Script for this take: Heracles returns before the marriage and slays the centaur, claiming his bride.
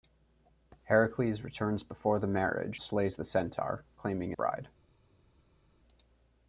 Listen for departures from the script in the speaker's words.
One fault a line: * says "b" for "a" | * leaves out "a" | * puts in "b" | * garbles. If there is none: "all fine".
* leaves out "and"
* leaves out "his"